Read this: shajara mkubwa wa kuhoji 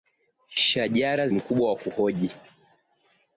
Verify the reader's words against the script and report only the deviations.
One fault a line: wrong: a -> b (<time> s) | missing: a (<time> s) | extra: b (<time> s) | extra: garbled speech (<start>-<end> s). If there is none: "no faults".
no faults